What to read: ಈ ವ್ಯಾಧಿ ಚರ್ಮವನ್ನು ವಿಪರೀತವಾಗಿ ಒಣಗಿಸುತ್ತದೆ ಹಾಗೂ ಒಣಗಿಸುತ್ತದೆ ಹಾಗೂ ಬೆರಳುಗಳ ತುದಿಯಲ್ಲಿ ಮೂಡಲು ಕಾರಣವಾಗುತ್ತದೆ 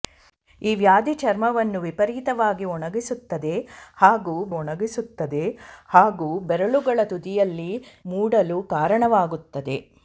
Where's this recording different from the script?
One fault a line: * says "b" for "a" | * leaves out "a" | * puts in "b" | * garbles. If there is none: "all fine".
all fine